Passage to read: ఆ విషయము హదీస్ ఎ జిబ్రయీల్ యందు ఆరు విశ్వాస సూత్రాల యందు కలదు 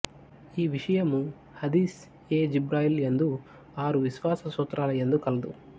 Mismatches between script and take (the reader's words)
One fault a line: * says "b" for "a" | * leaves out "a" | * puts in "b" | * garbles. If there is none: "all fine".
* says "ఈ" for "ఆ"